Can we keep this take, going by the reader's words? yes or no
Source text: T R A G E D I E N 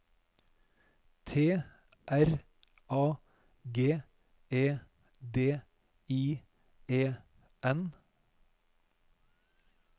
yes